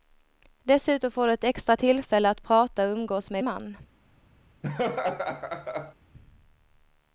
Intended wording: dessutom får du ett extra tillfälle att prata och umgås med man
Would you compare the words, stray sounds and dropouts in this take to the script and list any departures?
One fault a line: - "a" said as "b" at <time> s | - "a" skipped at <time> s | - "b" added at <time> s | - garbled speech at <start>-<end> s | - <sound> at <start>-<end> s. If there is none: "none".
- laugh at 4.6-5.9 s